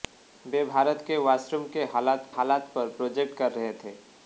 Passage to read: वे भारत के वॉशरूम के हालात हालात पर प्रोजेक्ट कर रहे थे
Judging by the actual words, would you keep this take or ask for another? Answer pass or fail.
pass